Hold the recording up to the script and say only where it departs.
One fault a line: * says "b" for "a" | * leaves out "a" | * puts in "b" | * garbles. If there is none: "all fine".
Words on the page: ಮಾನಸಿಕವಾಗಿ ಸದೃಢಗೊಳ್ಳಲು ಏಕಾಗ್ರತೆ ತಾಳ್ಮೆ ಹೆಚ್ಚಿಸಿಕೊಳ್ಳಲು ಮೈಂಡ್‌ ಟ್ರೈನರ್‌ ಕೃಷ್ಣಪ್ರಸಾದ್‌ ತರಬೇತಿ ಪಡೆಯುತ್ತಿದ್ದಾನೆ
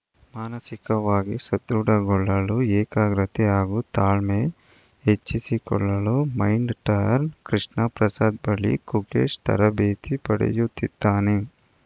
* puts in "ಹಾಗೂ"
* puts in "ಬಳಿ ಗುಕೇಶ್"